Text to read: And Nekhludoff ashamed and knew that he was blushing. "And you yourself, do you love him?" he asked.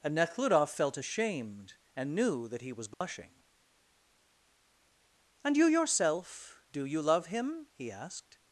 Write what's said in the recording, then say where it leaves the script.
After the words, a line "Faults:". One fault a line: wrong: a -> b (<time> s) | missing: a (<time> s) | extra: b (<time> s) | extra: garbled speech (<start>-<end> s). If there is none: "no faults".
And Nekhludoff felt ashamed and knew that he was blushing. "And you yourself, do you love him?" he asked.
Faults:
extra: felt (0.7 s)